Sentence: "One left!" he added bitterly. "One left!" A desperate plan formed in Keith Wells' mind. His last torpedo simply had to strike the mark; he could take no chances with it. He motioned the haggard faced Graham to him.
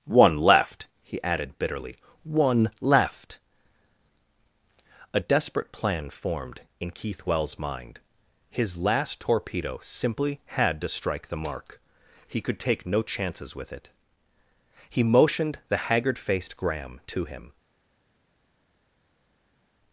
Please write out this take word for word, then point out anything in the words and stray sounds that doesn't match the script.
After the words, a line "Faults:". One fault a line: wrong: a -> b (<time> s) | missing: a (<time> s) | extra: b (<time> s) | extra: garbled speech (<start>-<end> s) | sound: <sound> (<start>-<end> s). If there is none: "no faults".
"One left!" he added bitterly. "One left!" A desperate plan formed in Keith Wells' mind. His last torpedo simply had to strike the mark; he could take no chances with it. He motioned the haggard faced Graham to him.
Faults:
no faults